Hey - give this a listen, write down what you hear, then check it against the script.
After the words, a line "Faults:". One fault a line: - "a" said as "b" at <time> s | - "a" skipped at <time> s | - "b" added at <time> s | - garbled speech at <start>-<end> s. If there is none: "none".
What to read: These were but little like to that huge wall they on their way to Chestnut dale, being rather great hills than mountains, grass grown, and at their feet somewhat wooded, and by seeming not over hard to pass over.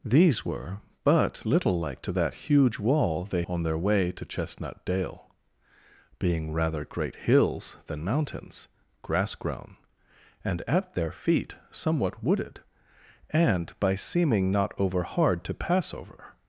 These were but little like to that huge wall they on their way to Chestnut dale, being rather great hills than mountains, grass grown, and at their feet somewhat wooded, and by seeming not over hard to pass over.
Faults:
none